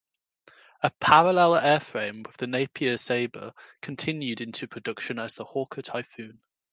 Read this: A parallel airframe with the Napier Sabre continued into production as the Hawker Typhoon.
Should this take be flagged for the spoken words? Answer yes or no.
no